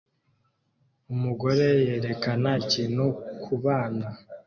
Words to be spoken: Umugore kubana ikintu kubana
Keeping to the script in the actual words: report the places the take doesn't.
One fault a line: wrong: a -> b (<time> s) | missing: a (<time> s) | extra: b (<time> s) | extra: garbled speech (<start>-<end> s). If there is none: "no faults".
wrong: kubana -> yerekana (1.9 s)